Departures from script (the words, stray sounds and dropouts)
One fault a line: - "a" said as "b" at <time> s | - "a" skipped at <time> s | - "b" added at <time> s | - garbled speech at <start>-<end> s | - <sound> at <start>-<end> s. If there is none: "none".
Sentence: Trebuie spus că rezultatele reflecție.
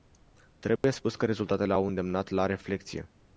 - dropout at 0.8-0.8 s
- "au îndemnat la" added at 1.7 s